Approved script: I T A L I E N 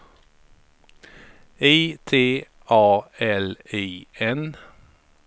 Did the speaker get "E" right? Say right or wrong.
wrong